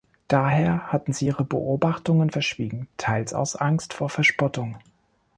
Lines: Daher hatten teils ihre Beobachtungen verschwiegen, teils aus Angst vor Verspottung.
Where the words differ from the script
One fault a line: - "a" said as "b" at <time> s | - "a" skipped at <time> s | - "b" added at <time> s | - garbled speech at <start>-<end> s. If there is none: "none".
- "teils" said as "sie" at 1.1 s